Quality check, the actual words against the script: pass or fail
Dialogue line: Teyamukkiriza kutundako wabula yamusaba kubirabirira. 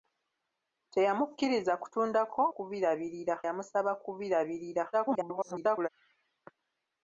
fail